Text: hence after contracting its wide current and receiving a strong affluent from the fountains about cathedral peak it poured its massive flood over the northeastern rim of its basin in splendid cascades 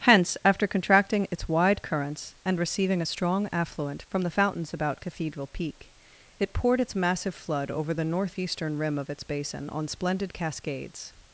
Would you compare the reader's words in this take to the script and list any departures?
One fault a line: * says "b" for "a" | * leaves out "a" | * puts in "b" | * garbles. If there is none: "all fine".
* says "currents" for "current"
* says "on" for "in"